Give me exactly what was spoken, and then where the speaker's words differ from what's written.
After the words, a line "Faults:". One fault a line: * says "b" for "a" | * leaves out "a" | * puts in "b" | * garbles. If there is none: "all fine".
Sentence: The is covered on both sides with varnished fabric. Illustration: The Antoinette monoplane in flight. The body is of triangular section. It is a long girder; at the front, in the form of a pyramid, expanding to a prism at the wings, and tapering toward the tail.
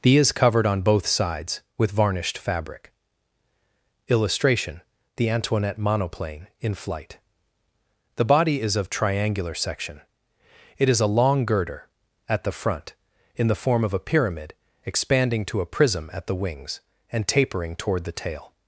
The is covered on both sides with varnished fabric. Illustration: The Antoinette monoplane in flight. The body is of triangular section. It is a long girder; at the front, in the form of a pyramid, expanding to a prism at the wings, and tapering toward the tail.
Faults:
all fine